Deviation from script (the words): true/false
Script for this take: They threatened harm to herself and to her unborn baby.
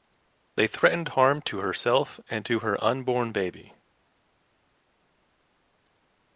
false